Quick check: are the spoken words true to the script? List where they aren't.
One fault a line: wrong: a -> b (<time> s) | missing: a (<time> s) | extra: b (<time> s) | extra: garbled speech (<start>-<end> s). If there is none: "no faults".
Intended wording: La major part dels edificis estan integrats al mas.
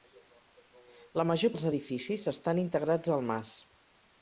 missing: part (1.5 s)